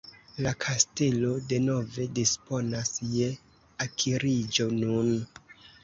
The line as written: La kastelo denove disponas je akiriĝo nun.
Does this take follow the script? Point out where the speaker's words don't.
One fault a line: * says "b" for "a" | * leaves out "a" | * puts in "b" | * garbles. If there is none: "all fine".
all fine